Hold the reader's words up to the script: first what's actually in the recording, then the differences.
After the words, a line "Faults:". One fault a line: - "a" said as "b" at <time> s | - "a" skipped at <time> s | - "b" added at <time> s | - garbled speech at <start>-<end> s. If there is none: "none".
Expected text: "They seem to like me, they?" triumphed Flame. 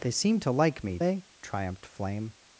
"They seem to like me, they?" triumphed Flame.
Faults:
none